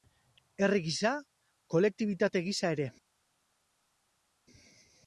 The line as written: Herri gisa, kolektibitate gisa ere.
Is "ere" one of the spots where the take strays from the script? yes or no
no